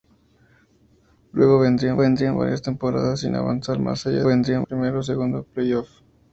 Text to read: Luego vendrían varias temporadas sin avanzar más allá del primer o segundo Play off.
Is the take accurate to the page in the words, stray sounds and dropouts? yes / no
no